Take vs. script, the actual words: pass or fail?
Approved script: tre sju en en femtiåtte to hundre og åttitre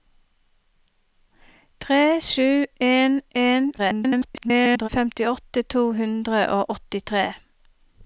fail